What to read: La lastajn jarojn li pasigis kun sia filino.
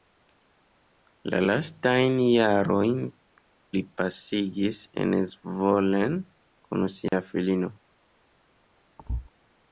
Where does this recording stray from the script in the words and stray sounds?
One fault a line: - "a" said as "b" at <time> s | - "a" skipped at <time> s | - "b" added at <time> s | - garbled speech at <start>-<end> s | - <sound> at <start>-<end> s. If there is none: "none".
- "en Zvolen" added at 5.0 s
- dropout at 7.1-7.1 s
- thud at 9.0-9.3 s